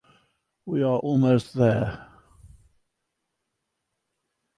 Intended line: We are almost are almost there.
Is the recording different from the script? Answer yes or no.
yes